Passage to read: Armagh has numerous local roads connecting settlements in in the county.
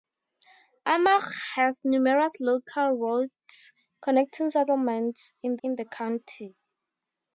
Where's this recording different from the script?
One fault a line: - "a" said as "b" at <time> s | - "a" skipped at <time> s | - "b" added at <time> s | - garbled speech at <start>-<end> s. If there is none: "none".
none